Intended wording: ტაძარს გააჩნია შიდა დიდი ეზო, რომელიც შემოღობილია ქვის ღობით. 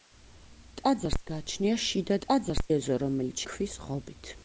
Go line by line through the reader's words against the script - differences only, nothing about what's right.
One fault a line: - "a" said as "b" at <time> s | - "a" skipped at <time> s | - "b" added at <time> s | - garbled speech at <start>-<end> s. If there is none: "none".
- "დიდი" said as "ტაძარს" at 2.2 s
- "შემოღობილია" skipped at 3.5 s